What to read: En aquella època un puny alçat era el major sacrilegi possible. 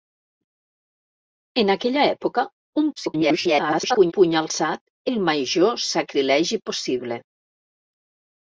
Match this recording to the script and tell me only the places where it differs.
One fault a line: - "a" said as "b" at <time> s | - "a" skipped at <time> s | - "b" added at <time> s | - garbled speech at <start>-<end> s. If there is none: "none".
- garbled speech at 3.0-4.1 s
- "era" skipped at 4.8 s